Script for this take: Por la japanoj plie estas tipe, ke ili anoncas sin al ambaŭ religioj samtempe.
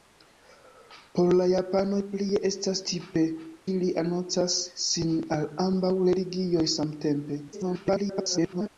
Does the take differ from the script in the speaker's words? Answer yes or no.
yes